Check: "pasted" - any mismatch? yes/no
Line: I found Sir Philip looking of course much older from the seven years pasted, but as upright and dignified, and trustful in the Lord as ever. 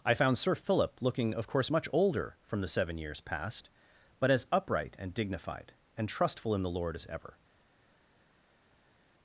yes